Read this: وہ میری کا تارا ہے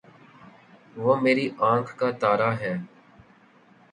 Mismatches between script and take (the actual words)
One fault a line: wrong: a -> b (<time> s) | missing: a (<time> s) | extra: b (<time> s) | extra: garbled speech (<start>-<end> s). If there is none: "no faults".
extra: آنکھ (1.7 s)